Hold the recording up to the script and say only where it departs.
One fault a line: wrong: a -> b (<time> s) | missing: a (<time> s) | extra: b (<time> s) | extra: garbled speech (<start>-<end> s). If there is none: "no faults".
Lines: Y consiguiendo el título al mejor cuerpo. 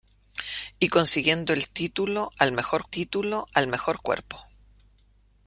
extra: título al mejor (2.9 s)